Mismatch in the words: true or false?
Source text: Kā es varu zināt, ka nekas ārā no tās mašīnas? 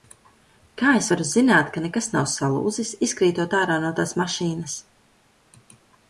true